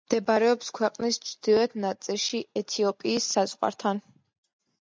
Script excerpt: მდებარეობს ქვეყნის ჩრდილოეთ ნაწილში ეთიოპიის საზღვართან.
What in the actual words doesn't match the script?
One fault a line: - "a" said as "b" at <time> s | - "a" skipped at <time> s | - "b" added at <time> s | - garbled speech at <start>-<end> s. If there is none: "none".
none